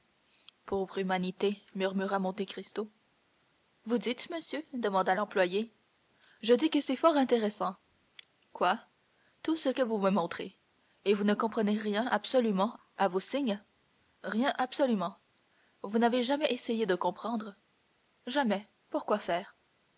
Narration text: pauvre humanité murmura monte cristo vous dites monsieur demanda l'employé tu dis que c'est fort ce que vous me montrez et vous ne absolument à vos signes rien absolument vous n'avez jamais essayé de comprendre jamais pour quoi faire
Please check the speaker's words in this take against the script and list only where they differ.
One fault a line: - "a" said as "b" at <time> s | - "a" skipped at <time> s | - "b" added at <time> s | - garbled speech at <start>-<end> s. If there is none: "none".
- "tu" said as "je" at 6.4 s
- "intéressant quoi tout" added at 7.2 s
- "comprenez rien" added at 11.3 s